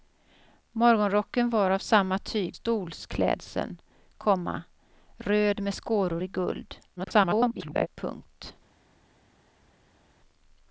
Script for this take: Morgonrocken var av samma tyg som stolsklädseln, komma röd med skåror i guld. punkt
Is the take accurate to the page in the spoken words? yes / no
no